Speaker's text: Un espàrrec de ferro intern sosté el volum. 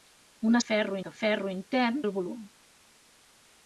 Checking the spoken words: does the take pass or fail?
fail